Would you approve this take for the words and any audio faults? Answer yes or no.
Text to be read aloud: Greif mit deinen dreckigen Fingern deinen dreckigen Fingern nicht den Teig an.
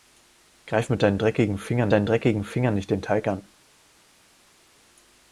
yes